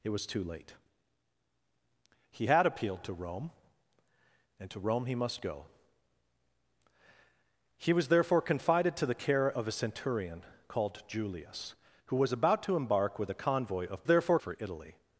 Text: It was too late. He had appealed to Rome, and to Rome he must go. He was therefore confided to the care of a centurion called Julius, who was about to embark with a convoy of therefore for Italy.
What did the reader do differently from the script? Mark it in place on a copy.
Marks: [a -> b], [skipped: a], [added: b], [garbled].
It was too late. He had appealed to Rome, and to Rome he must go. He was therefore confided to the care of a centurion called Julius, who was about to embark with a convoy of therefore for Italy.